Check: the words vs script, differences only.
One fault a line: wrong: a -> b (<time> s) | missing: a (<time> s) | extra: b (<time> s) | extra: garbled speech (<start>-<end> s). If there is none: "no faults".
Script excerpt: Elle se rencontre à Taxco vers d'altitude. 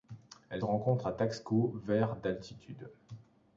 missing: se (0.6 s)